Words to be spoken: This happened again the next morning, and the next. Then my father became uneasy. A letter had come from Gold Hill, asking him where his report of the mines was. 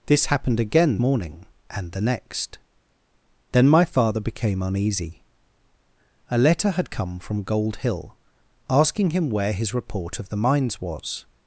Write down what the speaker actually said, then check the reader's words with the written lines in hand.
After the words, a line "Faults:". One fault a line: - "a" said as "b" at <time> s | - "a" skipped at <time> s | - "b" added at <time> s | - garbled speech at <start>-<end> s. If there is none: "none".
This happened again morning, and the next. Then my father became uneasy. A letter had come from Gold Hill, asking him where his report of the mines was.
Faults:
- "the next" skipped at 1.0 s